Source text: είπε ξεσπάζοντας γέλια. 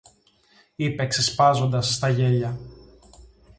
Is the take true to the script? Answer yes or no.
no